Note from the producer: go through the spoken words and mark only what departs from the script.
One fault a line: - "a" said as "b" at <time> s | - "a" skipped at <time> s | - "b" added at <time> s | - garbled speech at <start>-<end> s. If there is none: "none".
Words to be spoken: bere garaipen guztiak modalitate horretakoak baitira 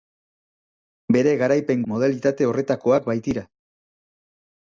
- "guztiak" skipped at 1.8 s